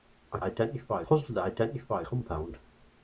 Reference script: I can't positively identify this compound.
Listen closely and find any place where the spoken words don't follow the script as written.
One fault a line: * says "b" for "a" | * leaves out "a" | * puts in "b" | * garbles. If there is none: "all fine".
* says "identify" for "can't"
* leaves out "this"